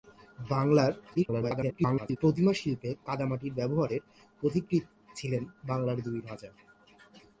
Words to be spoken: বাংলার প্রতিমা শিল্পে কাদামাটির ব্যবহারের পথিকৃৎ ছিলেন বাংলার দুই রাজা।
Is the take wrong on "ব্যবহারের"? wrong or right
right